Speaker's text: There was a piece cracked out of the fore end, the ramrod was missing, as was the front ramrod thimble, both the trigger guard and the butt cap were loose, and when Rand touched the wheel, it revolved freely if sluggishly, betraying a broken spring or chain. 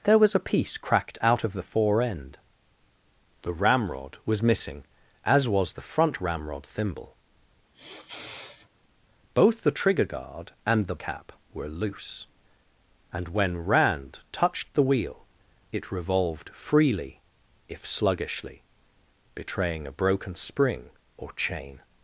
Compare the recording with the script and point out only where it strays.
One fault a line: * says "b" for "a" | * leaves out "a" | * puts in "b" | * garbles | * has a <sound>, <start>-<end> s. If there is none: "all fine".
* has a sniff, 7.7-8.7 s
* leaves out "butt"